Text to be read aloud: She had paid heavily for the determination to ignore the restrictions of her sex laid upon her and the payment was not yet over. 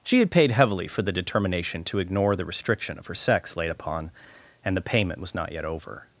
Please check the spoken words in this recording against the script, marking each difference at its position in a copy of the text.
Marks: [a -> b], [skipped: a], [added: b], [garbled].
She had paid heavily for the determination to ignore the [restrictions -> restriction] of her sex laid upon [skipped: her] and the payment was not yet over.